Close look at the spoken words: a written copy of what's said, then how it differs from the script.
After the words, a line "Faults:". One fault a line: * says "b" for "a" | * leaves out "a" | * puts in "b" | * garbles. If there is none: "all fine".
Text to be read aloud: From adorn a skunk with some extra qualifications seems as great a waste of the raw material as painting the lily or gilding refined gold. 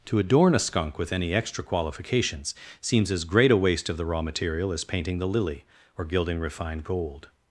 To adorn a skunk with any extra qualifications seems as great a waste of the raw material as painting the lily or gilding refined gold.
Faults:
* says "To" for "From"
* says "any" for "some"